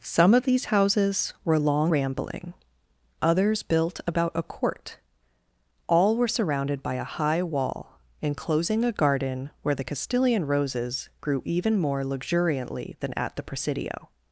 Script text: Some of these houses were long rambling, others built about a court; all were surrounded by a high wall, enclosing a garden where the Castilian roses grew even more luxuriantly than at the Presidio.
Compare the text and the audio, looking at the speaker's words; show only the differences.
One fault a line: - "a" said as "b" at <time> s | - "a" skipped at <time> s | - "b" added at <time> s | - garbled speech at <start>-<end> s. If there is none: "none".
none